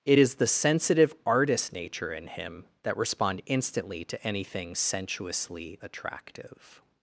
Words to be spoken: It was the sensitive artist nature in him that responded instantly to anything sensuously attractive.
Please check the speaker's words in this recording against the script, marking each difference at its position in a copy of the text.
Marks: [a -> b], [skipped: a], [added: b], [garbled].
It [was -> is] the sensitive artist nature in him that [responded -> respond] instantly to anything sensuously attractive.